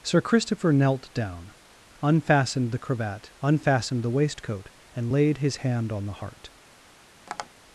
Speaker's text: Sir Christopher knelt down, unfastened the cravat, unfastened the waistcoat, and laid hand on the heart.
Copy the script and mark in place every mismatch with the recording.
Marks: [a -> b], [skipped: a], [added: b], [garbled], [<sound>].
Sir Christopher knelt down, unfastened the cravat, unfastened the waistcoat, and laid [added: his] hand on the heart. [tap]